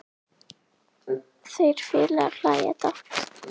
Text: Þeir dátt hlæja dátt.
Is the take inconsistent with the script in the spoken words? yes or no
yes